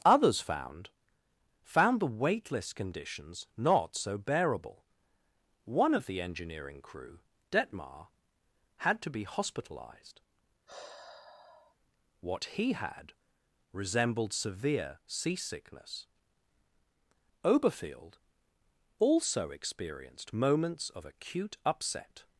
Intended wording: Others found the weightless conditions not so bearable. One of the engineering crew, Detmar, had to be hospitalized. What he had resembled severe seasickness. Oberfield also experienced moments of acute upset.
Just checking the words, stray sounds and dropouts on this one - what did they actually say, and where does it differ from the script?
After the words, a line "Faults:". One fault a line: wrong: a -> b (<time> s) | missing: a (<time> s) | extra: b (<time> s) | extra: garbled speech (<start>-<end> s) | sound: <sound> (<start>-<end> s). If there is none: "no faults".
Others found found the weightless conditions not so bearable. One of the engineering crew, Detmar, had to be hospitalized. What he had resembled severe seasickness. Oberfield also experienced moments of acute upset.
Faults:
extra: found (1.6 s)
sound: sigh (10.7-11.8 s)